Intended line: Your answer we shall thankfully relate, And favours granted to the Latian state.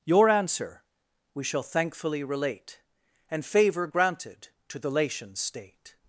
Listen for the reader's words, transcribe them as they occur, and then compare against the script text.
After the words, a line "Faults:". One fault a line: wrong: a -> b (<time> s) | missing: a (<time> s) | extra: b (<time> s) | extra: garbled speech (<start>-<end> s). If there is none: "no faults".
Your answer we shall thankfully relate, And favour granted to the Latian state.
Faults:
wrong: favours -> favour (3.5 s)